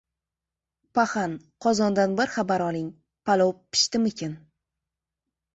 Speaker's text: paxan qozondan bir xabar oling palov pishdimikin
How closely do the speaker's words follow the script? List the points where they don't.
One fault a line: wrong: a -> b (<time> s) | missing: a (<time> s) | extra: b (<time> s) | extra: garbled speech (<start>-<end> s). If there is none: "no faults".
no faults